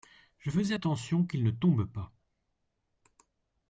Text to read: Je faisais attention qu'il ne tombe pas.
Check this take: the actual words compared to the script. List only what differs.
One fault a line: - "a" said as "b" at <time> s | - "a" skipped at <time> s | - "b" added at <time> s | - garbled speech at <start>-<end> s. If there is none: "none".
none